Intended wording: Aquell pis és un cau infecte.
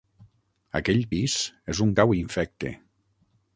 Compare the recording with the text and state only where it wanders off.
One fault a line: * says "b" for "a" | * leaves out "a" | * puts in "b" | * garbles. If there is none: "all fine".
all fine